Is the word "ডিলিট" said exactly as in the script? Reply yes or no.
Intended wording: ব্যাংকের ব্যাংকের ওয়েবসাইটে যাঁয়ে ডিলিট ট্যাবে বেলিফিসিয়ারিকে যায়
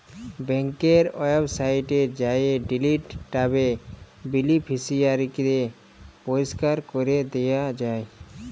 yes